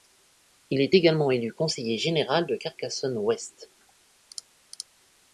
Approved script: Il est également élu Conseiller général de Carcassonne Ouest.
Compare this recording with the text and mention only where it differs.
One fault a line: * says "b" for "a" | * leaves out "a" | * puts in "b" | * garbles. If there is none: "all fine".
all fine